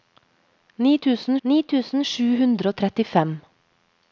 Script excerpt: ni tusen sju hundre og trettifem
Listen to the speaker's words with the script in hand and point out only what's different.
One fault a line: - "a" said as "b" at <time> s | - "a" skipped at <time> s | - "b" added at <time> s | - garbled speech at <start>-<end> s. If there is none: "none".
- "ni tusen" added at 1.5 s